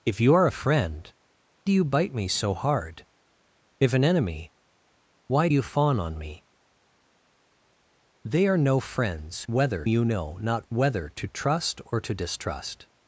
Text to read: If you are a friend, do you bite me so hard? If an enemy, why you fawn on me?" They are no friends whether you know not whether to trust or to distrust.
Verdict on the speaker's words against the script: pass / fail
pass